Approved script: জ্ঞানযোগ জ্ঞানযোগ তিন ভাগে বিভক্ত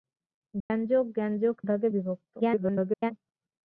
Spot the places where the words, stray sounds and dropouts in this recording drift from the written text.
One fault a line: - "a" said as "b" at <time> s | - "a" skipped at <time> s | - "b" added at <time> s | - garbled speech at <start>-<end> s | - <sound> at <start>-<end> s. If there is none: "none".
- dropout at 0.6-0.7 s
- "তিন" skipped at 1.6 s
- garbled speech at 2.4-3.1 s